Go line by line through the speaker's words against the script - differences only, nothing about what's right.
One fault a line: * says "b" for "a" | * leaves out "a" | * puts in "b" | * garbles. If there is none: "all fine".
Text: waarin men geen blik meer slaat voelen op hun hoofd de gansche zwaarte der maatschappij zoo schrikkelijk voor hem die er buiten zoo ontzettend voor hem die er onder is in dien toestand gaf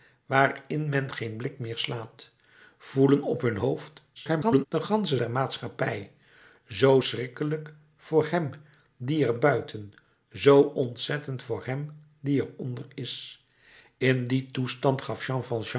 * garbles
* leaves out "zwaarte"